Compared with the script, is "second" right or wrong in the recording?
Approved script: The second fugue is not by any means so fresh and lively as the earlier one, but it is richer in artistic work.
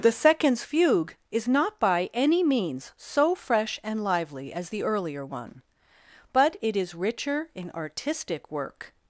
wrong